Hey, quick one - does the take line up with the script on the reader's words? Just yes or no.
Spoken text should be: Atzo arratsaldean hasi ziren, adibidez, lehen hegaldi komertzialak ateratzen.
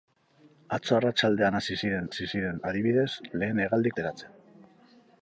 no